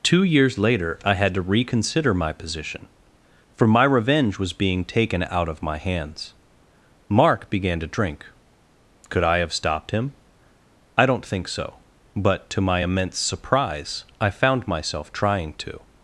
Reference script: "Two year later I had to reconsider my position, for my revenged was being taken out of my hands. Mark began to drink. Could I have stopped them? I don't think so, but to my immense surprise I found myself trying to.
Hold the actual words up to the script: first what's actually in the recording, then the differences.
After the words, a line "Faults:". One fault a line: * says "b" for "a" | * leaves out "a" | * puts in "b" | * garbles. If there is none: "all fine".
"Two years later I had to reconsider my position, for my revenge was being taken out of my hands. Mark began to drink. Could I have stopped him? I don't think so, but to my immense surprise I found myself trying to.
Faults:
* says "years" for "year"
* says "revenge" for "revenged"
* says "him" for "them"